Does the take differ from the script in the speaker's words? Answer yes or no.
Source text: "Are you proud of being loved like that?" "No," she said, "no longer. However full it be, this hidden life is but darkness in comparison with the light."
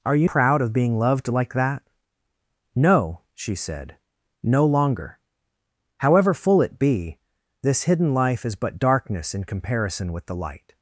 no